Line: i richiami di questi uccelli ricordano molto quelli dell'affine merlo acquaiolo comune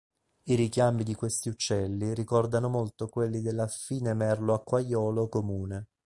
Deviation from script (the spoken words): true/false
false